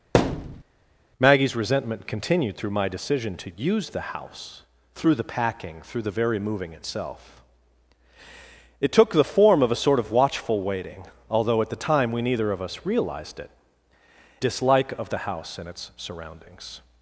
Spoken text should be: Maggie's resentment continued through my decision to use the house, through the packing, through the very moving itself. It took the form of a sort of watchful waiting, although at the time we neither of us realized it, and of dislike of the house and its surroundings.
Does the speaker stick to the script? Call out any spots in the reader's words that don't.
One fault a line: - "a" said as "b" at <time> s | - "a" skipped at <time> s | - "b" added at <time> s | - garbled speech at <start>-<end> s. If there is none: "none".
- "and of" skipped at 13.5 s